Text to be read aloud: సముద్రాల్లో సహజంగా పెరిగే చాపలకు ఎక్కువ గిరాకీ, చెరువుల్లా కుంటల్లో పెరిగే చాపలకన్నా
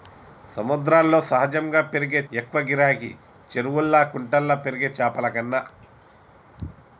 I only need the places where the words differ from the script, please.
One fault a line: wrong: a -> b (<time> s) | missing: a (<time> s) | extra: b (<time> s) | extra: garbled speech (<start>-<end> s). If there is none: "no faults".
missing: చాపలకు (2.2 s)